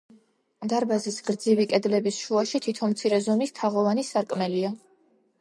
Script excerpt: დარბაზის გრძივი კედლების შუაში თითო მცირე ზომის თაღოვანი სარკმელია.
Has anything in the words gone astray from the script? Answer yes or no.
no